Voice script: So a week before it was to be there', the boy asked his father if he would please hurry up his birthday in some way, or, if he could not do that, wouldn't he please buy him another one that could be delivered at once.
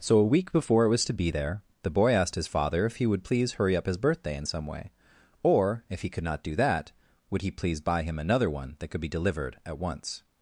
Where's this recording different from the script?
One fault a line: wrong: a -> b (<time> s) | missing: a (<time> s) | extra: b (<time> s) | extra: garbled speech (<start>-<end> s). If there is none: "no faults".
wrong: wouldn't -> would (7.3 s)